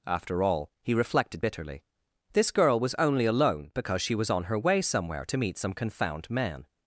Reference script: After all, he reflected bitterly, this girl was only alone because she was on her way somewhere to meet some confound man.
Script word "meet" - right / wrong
right